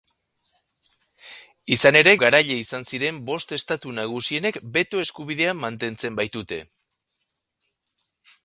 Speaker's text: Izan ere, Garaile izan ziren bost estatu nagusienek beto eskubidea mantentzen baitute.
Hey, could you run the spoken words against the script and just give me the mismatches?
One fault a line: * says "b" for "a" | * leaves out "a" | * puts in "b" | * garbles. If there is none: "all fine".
all fine